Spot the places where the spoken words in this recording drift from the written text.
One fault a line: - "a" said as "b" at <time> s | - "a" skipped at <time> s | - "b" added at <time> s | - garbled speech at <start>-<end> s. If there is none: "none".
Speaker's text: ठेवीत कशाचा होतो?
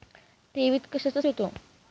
none